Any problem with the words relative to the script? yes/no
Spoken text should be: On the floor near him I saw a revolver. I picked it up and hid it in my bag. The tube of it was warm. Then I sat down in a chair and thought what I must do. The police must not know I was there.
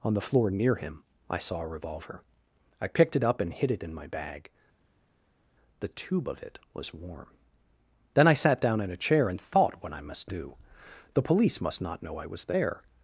no